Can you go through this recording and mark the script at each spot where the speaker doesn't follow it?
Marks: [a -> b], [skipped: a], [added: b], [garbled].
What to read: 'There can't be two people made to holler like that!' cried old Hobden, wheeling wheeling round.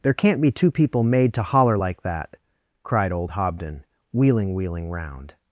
'There can't be two people made to holler like that!' cried old Hobden, wheeling wheeling round.